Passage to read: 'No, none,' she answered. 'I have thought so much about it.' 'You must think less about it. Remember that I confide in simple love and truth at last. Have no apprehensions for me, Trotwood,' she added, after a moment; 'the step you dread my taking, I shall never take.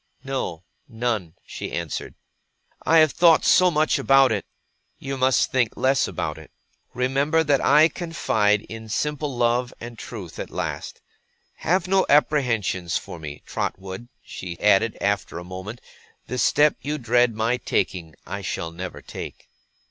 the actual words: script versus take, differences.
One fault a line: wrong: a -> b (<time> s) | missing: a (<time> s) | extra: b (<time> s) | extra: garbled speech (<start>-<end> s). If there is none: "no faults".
no faults